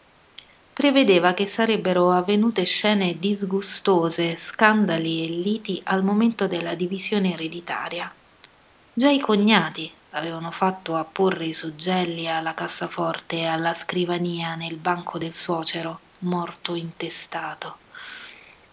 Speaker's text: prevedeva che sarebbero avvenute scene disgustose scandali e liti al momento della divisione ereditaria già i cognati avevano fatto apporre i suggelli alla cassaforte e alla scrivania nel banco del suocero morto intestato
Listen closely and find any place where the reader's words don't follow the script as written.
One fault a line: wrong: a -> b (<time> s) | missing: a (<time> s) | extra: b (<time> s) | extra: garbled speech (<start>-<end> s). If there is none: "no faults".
no faults